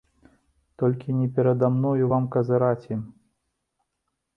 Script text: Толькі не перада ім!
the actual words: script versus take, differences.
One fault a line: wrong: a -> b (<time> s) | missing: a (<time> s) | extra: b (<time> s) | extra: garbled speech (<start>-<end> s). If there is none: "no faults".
extra: мною вам казыраць (1.8 s)